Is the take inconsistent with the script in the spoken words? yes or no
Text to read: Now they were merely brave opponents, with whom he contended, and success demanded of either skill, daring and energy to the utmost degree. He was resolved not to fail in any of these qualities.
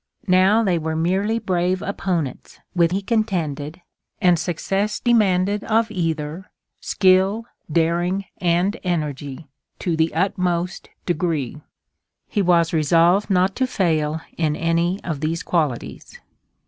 yes